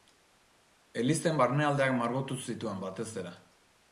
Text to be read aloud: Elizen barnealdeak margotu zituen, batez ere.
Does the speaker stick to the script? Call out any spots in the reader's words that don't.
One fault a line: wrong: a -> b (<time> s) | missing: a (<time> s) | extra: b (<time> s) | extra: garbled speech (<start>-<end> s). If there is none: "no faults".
no faults